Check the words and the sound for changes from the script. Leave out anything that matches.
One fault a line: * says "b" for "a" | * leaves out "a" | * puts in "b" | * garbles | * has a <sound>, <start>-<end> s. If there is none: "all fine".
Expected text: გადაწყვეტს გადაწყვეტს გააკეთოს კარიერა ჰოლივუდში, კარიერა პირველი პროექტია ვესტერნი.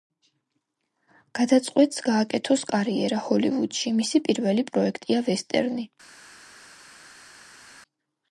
* leaves out "გადაწყვეტს"
* says "მისი" for "კარიერა"